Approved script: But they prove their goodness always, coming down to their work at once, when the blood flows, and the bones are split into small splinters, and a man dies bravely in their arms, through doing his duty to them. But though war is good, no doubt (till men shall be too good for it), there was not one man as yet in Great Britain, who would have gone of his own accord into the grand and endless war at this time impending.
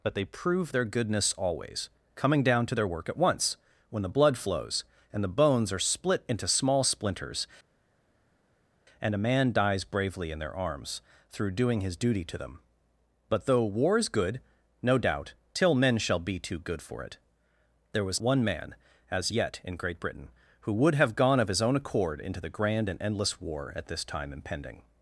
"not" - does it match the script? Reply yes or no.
no